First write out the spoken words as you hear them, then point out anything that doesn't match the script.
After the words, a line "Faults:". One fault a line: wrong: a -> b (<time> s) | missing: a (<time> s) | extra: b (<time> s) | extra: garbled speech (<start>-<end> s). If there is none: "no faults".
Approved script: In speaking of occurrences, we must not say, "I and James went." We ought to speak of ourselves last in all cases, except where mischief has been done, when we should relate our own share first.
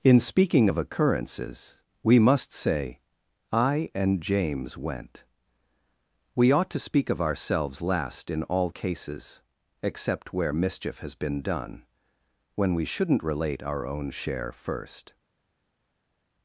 In speaking of occurrences, we must say, "I and James went." We ought to speak of ourselves last in all cases, except where mischief has been done, when we shouldn't relate our own share first.
Faults:
missing: not (2.5 s)
wrong: should -> shouldn't (12.8 s)